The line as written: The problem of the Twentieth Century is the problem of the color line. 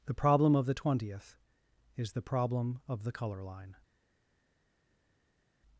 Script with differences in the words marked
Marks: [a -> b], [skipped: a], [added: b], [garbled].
The problem of the Twentieth [skipped: Century] is the problem of the color line.